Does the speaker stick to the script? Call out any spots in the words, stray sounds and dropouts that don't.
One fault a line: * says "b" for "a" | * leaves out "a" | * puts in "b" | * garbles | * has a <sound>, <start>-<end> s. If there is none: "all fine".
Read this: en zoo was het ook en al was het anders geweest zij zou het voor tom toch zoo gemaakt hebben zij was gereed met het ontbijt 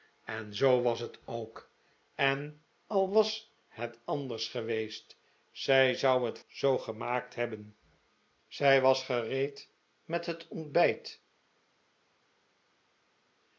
* leaves out "voor tom toch"